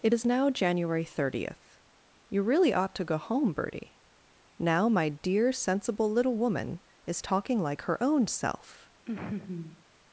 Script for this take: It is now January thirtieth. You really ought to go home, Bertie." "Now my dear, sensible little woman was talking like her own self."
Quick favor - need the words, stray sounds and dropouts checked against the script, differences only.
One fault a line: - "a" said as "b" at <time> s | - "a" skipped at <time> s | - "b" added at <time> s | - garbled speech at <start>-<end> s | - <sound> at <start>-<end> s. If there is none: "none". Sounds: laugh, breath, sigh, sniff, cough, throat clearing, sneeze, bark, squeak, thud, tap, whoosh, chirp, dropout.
- "was" said as "is" at 7.0 s
- laugh at 9.1-9.8 s